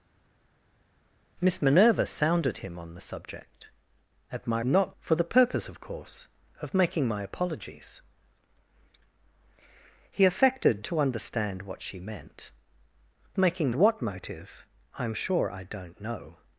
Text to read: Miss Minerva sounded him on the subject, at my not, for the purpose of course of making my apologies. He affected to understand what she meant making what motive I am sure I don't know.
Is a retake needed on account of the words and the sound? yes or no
no